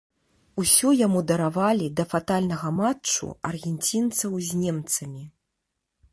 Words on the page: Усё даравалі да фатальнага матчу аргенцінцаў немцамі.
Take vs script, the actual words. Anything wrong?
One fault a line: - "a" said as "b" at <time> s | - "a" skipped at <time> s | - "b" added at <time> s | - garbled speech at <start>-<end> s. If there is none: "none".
- "яму" added at 1.1 s
- "з" added at 4.5 s